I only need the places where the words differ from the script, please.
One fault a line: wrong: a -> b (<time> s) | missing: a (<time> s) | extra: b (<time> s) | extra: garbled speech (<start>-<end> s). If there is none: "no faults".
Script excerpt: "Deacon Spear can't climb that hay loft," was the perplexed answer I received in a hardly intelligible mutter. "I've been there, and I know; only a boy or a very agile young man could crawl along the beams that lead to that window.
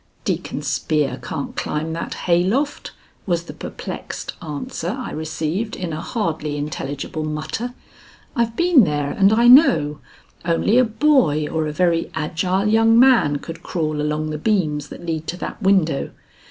no faults